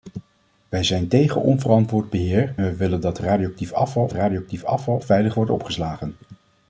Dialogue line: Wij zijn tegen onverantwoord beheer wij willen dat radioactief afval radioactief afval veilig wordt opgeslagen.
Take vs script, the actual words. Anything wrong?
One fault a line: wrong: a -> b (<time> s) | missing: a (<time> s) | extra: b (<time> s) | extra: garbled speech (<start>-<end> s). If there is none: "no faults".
no faults